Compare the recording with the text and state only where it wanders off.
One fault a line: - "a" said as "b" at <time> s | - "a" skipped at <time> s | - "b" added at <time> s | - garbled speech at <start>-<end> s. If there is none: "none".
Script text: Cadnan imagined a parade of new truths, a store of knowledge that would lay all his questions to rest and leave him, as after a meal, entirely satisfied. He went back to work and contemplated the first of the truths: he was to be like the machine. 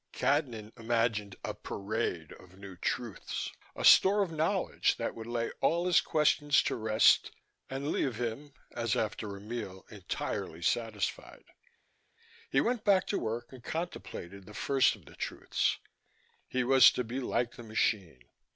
none